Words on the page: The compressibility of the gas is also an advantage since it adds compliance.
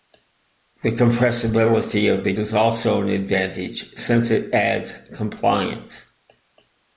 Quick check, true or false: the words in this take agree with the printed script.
false